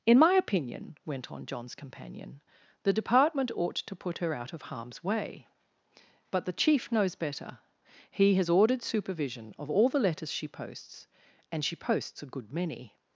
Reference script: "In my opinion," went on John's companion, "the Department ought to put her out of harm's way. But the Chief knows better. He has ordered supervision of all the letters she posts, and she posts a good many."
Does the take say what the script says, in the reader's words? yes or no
yes